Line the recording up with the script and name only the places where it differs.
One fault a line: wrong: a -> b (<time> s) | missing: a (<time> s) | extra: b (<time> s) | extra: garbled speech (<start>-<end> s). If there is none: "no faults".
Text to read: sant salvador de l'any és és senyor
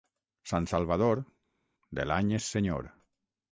missing: és (2.5 s)